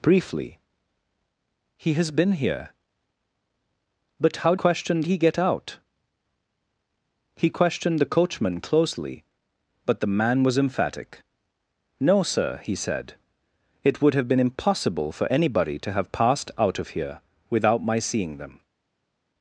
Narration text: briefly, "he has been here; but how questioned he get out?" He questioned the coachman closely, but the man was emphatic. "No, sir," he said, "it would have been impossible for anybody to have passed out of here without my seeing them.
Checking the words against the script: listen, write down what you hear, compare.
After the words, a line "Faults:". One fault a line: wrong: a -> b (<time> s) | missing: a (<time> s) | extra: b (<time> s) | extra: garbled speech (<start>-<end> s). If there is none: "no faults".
briefly, "he has been here; but how questioned he get out?" He questioned the coachman closely, but the man was emphatic. "No, sir," he said, "it would have been impossible for anybody to have passed out of here without my seeing them.
Faults:
no faults